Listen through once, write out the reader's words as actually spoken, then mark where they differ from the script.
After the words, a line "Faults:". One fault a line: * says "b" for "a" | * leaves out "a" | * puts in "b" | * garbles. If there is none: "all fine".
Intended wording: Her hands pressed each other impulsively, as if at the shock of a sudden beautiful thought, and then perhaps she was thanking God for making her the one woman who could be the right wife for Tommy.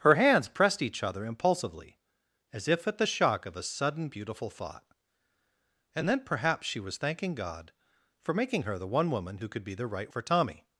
Her hands pressed each other impulsively, as if at the shock of a sudden beautiful thought, and then perhaps she was thanking God for making her the one woman who could be the right for Tommy.
Faults:
* leaves out "wife"